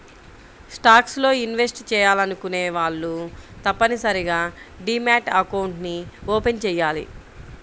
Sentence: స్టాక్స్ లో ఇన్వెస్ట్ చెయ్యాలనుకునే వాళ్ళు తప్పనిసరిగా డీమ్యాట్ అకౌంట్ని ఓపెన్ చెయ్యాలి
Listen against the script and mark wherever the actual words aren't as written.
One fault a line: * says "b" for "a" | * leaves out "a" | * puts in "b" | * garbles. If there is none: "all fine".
all fine